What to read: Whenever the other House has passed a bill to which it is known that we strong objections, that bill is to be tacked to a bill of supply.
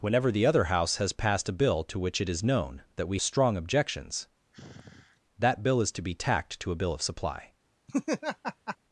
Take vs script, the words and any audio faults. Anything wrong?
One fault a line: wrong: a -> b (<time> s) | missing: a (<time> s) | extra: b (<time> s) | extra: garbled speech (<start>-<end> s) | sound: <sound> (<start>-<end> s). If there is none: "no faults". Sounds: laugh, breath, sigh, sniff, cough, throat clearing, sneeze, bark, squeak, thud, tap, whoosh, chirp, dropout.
sound: sigh (4.5-5.2 s)
sound: laugh (7.9-8.8 s)